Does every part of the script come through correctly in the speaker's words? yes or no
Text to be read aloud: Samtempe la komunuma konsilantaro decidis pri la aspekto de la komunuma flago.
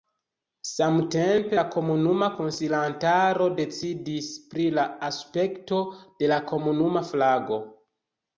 yes